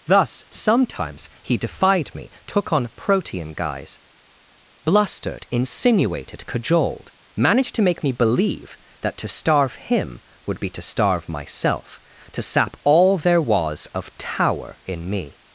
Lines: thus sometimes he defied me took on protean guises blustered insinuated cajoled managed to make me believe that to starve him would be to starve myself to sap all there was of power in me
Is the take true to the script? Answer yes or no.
no